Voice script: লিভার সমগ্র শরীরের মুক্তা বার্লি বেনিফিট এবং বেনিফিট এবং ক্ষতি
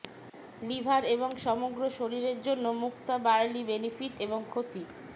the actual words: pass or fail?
fail